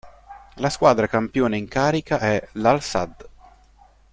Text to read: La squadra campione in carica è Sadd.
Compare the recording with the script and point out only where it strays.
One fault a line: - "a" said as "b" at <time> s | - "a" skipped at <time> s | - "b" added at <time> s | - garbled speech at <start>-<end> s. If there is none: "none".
- "l'Al" added at 2.5 s